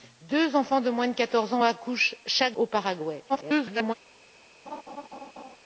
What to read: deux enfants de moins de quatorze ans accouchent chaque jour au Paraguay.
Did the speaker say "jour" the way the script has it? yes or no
no